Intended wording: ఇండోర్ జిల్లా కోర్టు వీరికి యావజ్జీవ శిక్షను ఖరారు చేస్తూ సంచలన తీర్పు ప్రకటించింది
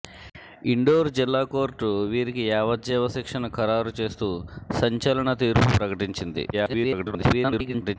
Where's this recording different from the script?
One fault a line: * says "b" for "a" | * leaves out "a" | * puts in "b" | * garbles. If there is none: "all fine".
* garbles